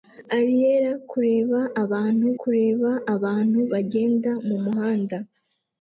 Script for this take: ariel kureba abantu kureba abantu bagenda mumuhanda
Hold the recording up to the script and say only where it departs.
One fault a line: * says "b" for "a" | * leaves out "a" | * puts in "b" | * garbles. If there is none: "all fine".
all fine